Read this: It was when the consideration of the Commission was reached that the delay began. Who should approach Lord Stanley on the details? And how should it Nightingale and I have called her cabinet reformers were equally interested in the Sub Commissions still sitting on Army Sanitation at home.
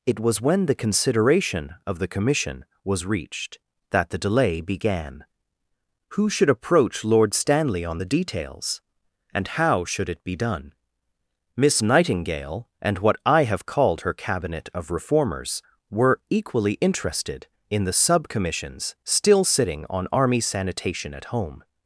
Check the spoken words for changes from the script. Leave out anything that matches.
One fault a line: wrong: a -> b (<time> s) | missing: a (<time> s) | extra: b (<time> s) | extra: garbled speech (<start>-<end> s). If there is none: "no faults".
extra: be done Miss (10.2 s)
extra: what (13.0 s)
extra: of (14.7 s)